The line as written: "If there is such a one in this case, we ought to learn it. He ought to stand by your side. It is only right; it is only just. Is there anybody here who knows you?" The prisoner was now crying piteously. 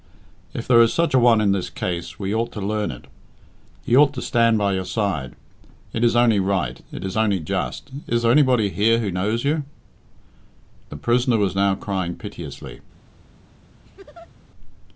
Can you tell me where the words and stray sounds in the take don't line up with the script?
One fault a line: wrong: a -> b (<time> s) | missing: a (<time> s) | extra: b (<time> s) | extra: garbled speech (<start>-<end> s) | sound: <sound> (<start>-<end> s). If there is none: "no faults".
sound: laugh (13.8-14.3 s)